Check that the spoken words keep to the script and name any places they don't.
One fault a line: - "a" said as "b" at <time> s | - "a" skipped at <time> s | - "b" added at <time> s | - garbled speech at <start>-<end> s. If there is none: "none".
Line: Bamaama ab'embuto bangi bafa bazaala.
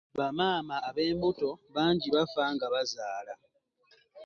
- "nga" added at 2.5 s